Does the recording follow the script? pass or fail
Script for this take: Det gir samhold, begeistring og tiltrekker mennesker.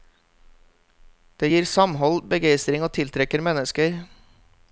pass